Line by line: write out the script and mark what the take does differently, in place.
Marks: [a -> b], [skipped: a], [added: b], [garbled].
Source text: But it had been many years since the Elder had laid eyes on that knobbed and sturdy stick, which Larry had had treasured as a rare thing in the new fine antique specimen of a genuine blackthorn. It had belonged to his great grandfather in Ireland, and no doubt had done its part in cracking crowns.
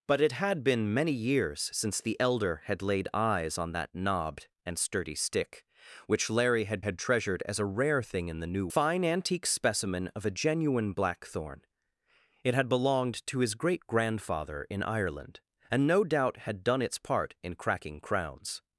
But it had been many years since the Elder had laid eyes on that knobbed and sturdy stick, which Larry had had treasured as a rare thing in the new fine antique specimen of a genuine blackthorn. It had belonged to his great grandfather in Ireland, and no doubt had done its part in cracking crowns.